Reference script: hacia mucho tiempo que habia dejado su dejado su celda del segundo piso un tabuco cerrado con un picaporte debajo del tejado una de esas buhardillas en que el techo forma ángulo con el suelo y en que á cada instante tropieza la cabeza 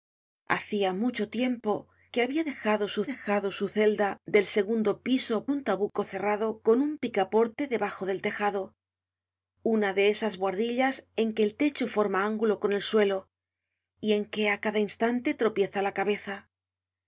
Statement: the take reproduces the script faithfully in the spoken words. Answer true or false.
true